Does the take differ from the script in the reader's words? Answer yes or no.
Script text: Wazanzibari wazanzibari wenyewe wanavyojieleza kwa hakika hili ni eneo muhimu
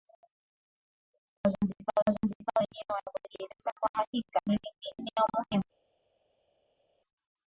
no